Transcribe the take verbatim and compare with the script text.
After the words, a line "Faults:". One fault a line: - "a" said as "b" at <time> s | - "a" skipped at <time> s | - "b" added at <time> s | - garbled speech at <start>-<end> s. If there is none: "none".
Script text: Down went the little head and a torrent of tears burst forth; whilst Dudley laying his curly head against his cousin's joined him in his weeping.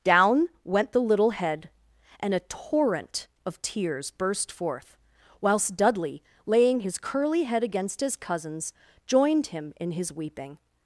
Down went the little head and a torrent of tears burst forth; whilst Dudley laying his curly head against his cousin's joined him in his weeping.
Faults:
none